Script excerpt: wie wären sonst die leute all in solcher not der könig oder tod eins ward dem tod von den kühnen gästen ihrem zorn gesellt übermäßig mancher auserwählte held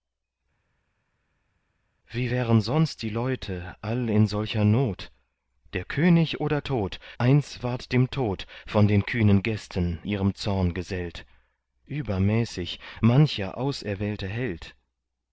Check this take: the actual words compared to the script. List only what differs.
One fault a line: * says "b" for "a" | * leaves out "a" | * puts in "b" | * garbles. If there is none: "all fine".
all fine